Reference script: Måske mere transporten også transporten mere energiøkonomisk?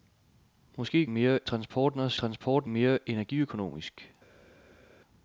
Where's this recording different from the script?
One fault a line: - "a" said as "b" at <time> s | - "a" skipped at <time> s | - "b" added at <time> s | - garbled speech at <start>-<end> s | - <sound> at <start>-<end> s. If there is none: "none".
none